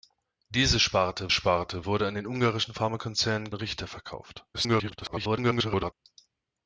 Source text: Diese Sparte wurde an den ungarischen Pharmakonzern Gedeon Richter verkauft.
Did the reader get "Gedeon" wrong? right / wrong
wrong